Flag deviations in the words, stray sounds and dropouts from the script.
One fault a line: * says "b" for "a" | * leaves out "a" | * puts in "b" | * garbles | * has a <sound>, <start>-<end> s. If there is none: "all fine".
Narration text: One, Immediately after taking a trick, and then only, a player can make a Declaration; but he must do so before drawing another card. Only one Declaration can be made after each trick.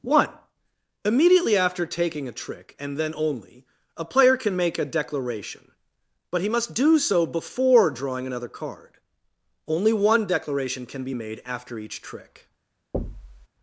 * has a thud, 12.9-13.5 s